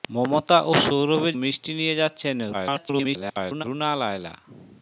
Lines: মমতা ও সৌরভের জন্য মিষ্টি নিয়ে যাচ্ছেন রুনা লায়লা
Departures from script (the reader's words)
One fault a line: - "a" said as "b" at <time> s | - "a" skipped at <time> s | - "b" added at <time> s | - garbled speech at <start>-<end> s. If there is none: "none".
- "জন্য" skipped at 1.4 s
- garbled speech at 2.5-3.6 s